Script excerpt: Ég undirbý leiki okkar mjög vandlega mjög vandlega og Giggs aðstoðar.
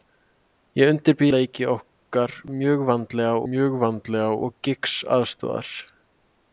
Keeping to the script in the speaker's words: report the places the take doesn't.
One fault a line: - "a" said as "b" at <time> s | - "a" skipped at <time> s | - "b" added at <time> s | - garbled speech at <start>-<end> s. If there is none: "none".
none